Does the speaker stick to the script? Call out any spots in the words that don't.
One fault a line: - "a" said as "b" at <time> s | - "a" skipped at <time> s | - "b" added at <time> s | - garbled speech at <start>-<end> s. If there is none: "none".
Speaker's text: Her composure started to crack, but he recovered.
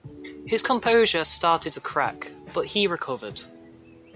- "Her" said as "His" at 0.5 s